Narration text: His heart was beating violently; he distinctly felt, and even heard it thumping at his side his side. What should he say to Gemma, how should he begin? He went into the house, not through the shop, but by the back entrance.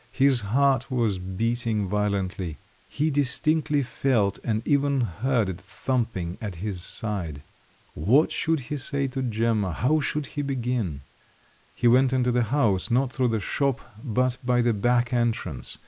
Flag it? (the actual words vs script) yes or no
yes